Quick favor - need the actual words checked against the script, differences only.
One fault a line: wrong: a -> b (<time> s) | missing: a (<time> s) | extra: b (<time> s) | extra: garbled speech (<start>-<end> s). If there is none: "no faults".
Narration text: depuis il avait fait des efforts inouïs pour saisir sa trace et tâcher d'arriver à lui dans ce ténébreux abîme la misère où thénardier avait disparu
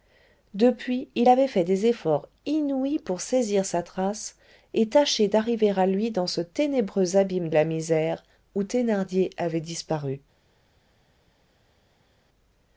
no faults